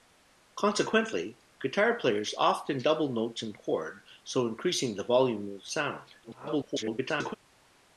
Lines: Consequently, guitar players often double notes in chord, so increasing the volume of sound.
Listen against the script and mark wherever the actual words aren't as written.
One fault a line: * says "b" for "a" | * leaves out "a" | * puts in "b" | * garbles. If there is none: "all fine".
* garbles